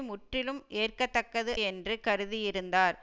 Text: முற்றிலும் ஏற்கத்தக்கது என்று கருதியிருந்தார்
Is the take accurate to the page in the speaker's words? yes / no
yes